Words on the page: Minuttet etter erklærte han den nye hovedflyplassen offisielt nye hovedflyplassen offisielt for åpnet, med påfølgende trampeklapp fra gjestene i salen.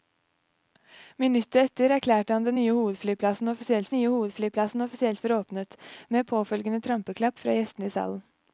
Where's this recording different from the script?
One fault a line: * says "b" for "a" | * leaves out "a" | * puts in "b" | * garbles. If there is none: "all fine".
all fine